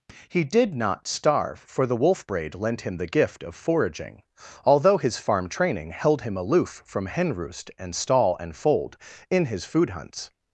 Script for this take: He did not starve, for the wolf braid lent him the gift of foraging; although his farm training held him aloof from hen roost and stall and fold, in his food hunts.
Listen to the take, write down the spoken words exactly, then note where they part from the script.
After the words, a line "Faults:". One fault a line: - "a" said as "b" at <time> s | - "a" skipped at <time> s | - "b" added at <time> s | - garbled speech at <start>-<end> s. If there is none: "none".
He did not starve, for the wolf braid lent him the gift of foraging; although his farm training held him aloof from hen roost and stall and fold, in his food hunts.
Faults:
none